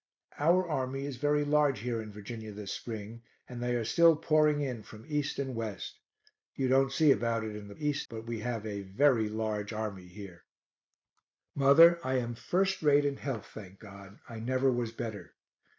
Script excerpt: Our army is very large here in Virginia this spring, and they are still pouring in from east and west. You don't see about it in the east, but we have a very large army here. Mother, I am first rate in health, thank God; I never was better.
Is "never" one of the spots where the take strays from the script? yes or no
no